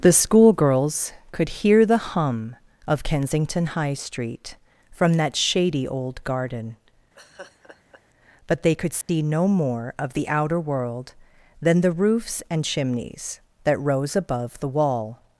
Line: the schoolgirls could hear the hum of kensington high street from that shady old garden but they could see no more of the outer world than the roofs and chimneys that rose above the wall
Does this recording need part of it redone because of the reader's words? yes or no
no